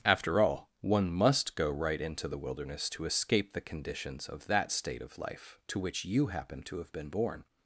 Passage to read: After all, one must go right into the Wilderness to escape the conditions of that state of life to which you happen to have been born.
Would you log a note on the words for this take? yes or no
no